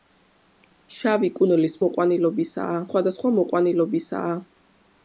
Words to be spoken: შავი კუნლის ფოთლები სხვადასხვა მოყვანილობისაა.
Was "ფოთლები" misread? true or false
true